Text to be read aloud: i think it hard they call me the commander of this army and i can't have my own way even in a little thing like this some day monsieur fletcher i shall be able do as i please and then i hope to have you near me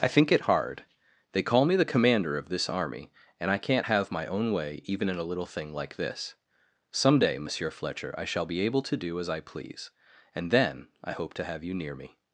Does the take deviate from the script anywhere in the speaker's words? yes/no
yes